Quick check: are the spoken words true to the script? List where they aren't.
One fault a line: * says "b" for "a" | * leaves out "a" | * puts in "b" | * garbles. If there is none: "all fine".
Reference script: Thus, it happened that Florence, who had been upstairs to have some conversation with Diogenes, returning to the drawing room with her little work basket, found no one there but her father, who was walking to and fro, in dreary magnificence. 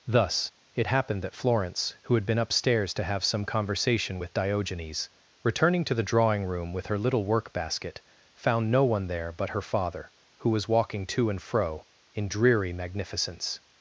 all fine